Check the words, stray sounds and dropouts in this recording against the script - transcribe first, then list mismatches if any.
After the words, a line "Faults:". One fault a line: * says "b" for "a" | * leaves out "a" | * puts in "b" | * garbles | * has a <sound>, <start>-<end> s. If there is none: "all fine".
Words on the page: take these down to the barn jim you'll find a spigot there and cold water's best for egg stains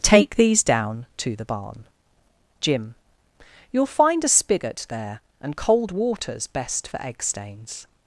take these down to the barn jim you'll find a spigot there and cold water's best for egg stains
Faults:
all fine